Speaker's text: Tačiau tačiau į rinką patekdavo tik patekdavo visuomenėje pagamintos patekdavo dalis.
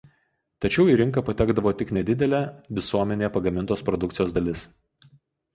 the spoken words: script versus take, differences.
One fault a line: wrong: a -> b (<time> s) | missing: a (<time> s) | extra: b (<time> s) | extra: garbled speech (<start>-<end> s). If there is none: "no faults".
missing: tačiau (0.8 s)
wrong: patekdavo -> nedidelė (2.0 s)
wrong: patekdavo -> produkcijos (3.9 s)